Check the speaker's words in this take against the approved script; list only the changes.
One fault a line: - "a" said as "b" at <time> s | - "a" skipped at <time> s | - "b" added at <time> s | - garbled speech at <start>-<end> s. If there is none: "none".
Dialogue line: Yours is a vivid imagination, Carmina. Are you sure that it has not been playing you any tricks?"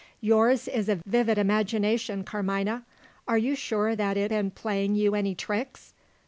- "has not" skipped at 4.3 s